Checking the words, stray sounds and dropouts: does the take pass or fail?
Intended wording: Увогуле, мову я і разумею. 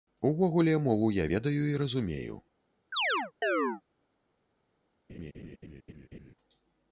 fail